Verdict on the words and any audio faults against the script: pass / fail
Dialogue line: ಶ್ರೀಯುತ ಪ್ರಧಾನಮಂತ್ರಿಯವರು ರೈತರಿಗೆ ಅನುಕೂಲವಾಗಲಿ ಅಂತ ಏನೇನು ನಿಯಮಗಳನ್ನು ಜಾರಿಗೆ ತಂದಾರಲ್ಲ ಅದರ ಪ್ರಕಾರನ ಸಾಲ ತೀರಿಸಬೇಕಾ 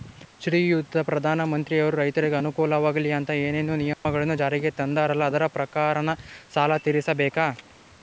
fail